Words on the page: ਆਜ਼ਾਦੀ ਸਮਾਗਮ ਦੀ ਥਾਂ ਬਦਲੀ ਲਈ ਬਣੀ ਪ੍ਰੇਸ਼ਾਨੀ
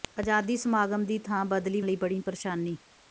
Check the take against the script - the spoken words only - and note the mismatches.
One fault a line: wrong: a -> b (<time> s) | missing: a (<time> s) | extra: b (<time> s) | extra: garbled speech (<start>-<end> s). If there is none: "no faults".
no faults